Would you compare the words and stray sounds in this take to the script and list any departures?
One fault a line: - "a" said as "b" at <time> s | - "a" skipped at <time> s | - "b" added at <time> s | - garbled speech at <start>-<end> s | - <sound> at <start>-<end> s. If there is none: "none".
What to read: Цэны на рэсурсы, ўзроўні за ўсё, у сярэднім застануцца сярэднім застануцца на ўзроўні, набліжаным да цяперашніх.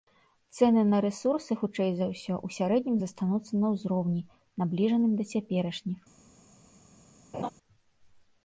- "ўзроўні" said as "хутчэй" at 1.6 s
- "сярэднім застануцца" skipped at 3.5 s
- laugh at 7.3-7.5 s